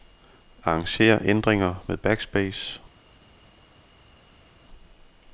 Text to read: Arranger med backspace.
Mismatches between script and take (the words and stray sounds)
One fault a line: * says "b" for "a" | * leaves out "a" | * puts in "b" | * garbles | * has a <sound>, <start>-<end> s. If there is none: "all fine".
* puts in "ændringer"